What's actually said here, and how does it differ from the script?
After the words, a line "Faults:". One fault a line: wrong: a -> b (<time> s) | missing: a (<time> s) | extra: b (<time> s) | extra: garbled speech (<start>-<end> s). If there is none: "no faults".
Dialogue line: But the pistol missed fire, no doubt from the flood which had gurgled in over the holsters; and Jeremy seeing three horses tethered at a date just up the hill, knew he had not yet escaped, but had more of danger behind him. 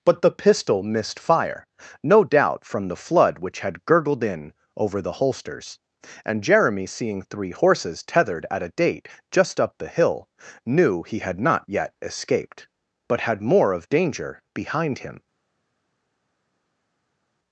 But the pistol missed fire, no doubt from the flood which had gurgled in over the holsters; and Jeremy seeing three horses tethered at a date just up the hill, knew he had not yet escaped, but had more of danger behind him.
Faults:
no faults